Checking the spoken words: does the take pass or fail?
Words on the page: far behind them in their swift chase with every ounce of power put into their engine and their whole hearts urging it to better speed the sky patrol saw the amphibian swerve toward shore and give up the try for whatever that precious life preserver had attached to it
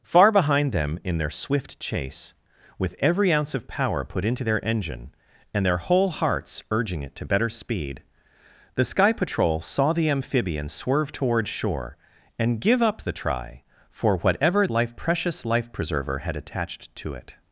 fail